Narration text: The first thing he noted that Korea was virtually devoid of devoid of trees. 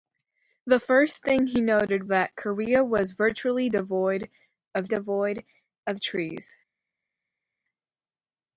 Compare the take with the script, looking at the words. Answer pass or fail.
pass